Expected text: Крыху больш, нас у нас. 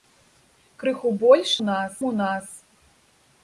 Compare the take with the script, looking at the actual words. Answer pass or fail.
pass